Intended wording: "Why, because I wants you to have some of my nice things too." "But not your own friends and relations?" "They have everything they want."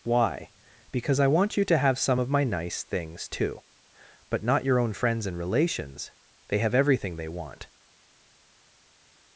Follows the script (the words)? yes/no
no